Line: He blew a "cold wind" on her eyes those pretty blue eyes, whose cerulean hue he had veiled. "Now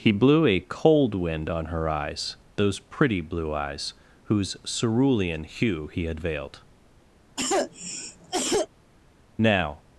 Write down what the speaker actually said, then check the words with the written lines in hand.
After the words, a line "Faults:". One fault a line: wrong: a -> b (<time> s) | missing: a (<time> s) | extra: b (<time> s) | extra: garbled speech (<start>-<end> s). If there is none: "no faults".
He blew a "cold wind" on her eyes those pretty blue eyes, whose cerulean hue he had veiled. "Now
Faults:
no faults